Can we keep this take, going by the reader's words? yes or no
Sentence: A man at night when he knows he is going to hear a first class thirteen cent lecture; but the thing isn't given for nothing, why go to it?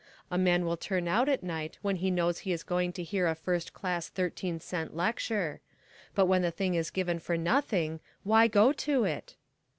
no